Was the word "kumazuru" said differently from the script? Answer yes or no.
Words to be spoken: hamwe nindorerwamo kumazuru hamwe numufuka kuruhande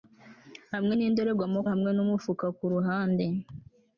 yes